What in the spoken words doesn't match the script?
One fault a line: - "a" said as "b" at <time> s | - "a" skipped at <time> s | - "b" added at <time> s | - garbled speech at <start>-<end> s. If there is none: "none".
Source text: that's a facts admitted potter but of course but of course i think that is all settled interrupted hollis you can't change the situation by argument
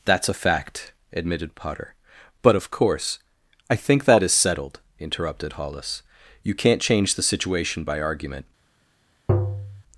- "facts" said as "fact" at 0.3 s
- "but of course" skipped at 3.2 s
- "all" skipped at 4.3 s